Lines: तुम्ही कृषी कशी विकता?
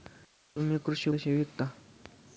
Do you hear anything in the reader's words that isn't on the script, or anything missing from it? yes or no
no